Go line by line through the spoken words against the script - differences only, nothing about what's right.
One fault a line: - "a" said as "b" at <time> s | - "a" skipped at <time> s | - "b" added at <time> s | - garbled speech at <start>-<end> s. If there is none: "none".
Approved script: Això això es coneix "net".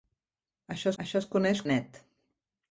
none